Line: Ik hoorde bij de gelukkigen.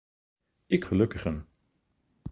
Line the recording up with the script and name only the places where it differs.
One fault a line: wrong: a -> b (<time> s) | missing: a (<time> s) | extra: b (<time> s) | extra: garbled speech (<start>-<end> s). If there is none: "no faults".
missing: hoorde bij de (0.8 s)